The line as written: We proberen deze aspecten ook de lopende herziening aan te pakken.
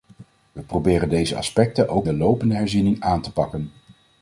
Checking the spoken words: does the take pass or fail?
pass